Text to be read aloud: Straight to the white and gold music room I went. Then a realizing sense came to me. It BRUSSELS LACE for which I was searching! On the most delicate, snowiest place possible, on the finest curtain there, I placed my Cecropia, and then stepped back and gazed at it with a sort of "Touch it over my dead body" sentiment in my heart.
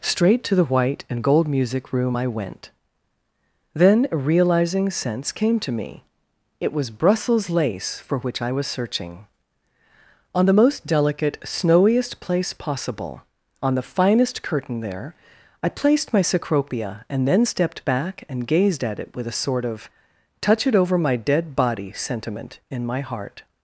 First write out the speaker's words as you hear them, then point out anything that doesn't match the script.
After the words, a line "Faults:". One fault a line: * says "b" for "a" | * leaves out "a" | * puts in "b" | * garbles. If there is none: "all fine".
Straight to the white and gold music room I went. Then a realizing sense came to me. It was BRUSSELS LACE for which I was searching! On the most delicate, snowiest place possible, on the finest curtain there, I placed my Cecropia, and then stepped back and gazed at it with a sort of "Touch it over my dead body" sentiment in my heart.
Faults:
* puts in "was"